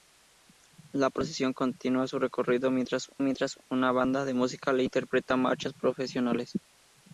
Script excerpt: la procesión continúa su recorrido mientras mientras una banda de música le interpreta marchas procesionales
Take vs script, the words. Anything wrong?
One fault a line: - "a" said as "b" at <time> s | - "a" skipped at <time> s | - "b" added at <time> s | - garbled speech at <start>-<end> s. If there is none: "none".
none